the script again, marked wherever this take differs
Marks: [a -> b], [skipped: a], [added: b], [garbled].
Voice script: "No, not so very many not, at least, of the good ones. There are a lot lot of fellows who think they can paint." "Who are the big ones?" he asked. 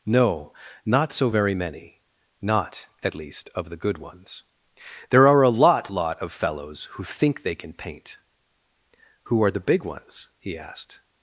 "No, not so very many not, at least, of the good ones. There are a lot lot of fellows who think they can paint." "Who are the big ones?" he asked.